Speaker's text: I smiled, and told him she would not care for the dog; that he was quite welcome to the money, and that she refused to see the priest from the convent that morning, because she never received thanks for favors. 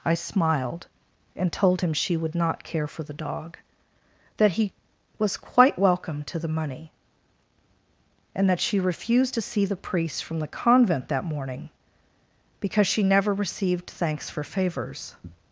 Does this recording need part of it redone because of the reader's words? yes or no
no